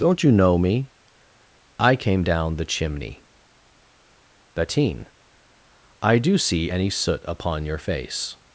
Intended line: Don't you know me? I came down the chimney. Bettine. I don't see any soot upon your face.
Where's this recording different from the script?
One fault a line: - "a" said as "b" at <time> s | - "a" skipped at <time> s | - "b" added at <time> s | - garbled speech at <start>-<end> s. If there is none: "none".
- "don't" said as "do" at 6.2 s